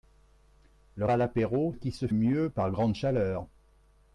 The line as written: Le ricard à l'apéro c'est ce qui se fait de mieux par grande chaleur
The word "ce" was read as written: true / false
false